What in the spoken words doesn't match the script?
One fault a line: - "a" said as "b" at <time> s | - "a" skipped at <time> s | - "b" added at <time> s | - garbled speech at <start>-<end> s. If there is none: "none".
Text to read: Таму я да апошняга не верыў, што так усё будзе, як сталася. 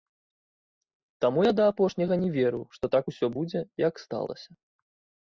none